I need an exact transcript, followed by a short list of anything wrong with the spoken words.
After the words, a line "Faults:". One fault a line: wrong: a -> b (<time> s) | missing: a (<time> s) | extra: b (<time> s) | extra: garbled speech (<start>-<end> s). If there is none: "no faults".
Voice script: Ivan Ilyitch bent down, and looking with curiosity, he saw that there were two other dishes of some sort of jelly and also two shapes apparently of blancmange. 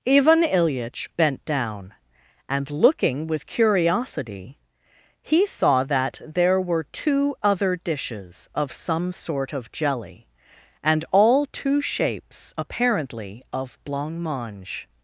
Ivan Ilyitch bent down, and looking with curiosity, he saw that there were two other dishes of some sort of jelly and all two shapes apparently of blancmange.
Faults:
wrong: also -> all (11.1 s)